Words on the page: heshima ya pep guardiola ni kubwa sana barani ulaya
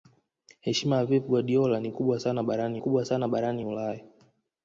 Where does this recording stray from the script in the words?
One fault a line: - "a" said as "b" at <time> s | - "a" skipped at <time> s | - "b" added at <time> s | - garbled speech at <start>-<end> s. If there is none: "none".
- "kubwa sana barani" added at 2.8 s